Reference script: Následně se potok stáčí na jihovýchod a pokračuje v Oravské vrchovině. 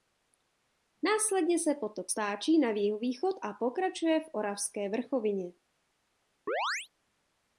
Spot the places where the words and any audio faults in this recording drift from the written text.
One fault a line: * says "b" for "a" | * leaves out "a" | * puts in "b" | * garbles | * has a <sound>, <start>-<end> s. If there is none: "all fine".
* has a chirp, 6.5-6.9 s